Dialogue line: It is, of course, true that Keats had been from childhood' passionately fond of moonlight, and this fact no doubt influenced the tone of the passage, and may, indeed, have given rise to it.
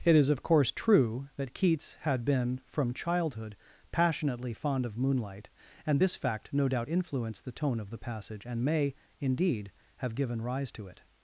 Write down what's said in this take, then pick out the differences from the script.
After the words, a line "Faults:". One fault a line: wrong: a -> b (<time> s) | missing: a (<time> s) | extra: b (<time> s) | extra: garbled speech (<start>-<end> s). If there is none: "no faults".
It is, of course, true that Keats had been from childhood' passionately fond of moonlight, and this fact no doubt influenced the tone of the passage, and may, indeed, have given rise to it.
Faults:
no faults